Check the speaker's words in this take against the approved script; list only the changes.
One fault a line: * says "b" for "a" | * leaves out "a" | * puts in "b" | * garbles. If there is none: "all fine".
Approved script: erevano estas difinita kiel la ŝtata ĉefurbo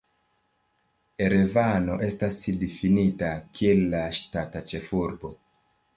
all fine